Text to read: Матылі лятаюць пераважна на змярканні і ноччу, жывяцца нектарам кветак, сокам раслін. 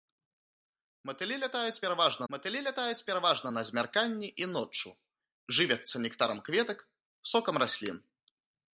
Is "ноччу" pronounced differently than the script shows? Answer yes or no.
no